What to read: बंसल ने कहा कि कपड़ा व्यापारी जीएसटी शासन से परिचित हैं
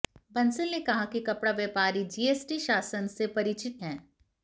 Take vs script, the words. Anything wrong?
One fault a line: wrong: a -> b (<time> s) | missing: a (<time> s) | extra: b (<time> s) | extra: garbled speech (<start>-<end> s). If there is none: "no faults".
no faults